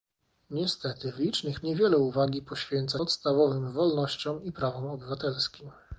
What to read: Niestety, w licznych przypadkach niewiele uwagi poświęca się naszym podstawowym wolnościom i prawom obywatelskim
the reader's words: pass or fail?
fail